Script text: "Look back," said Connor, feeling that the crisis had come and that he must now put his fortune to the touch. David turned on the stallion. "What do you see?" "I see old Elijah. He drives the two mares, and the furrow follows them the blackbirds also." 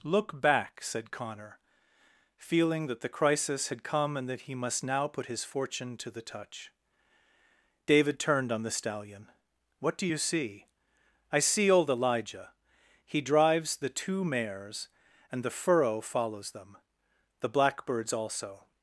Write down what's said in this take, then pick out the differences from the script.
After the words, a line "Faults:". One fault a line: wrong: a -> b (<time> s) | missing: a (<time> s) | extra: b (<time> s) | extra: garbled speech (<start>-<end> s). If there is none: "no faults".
"Look back," said Connor, feeling that the crisis had come and that he must now put his fortune to the touch. David turned on the stallion. "What do you see?" "I see old Elijah. He drives the two mares, and the furrow follows them the blackbirds also."
Faults:
no faults